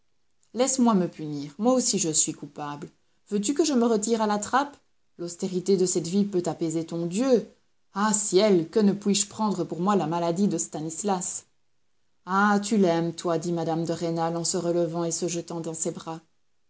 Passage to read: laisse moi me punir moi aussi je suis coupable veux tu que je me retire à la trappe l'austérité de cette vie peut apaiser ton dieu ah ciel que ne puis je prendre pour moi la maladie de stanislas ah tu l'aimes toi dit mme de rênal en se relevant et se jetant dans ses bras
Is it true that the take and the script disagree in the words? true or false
false